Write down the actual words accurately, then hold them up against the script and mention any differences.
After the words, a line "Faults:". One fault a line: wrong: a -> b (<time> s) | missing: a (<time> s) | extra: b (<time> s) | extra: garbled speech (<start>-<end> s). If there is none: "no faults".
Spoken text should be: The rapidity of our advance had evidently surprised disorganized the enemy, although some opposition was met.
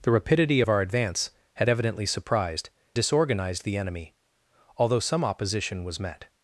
The rapidity of our advance had evidently surprised disorganized the enemy, although some opposition was met.
Faults:
no faults